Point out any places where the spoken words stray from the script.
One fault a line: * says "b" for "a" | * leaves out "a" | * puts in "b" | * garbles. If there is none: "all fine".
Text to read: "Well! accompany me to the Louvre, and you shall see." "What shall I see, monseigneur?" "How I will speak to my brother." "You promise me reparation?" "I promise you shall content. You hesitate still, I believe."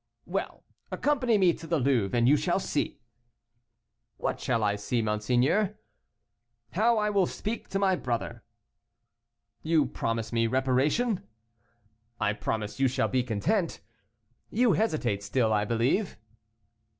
* puts in "be"